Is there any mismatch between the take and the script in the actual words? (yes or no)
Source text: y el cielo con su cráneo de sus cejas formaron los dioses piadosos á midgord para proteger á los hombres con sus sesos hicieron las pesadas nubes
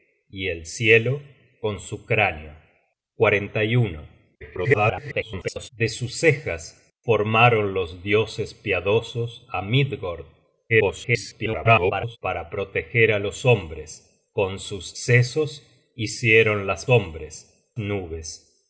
yes